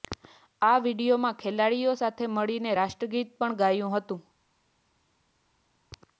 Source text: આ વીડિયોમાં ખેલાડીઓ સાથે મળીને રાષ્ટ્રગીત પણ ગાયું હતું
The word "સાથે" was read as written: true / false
true